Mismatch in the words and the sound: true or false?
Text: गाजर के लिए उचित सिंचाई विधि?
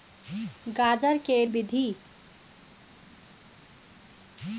true